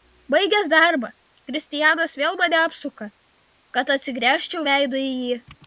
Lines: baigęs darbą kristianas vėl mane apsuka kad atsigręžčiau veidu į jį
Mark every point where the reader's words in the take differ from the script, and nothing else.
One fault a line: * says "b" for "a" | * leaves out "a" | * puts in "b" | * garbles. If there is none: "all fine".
all fine